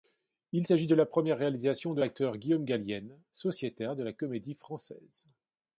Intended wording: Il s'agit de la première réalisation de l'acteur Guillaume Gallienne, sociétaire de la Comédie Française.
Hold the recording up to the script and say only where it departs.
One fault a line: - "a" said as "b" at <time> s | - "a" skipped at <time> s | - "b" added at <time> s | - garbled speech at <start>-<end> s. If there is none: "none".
none